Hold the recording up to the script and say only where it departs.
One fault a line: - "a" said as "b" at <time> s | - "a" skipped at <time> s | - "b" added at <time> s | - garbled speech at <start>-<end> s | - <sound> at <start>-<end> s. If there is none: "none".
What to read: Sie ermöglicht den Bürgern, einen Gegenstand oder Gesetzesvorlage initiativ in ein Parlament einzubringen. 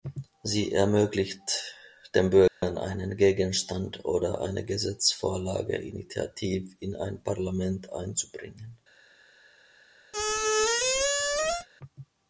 - dropout at 2.5-2.6 s
- "eine" added at 4.4 s
- squeak at 10.1-11.7 s